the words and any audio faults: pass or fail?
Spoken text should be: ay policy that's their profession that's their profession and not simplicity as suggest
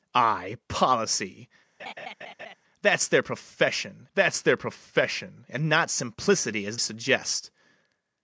fail